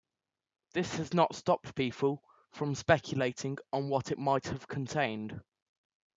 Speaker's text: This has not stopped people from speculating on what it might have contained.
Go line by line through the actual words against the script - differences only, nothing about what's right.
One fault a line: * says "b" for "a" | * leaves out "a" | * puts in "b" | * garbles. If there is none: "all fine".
all fine